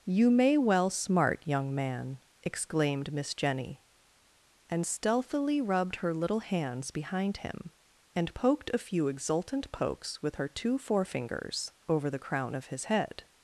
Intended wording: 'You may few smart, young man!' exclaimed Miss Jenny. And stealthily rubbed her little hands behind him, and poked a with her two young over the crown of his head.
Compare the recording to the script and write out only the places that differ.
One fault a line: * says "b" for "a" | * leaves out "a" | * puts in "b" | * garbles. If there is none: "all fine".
* says "well" for "few"
* puts in "few exultant pokes"
* says "forefingers" for "young"